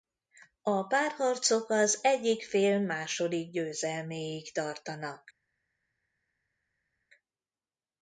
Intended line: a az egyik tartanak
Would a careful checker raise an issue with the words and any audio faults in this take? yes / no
yes